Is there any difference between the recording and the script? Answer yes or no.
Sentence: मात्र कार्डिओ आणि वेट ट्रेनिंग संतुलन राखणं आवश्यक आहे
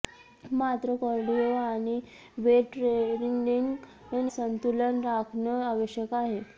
no